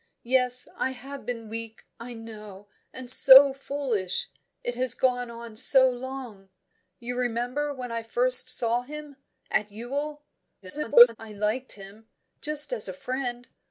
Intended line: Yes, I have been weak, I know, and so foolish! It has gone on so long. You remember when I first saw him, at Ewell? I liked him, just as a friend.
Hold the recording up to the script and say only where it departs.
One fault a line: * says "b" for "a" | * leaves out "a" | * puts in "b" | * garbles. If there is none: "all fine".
* garbles